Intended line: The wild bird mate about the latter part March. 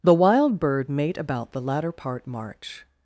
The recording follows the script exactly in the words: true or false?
true